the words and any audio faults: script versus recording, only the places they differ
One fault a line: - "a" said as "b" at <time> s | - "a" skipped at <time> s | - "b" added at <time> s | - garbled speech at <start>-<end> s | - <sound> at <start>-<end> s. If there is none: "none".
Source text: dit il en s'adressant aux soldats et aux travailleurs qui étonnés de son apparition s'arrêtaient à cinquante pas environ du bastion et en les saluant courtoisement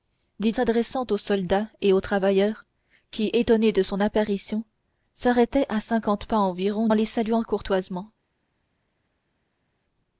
- "il en" skipped at 0.6 s
- "du bastion et" skipped at 6.9 s